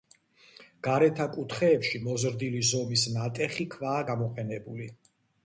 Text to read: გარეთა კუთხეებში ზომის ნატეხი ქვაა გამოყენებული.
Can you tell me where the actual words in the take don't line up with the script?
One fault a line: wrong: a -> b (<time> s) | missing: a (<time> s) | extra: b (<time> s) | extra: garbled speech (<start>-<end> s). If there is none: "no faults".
extra: მოზრდილი (2.0 s)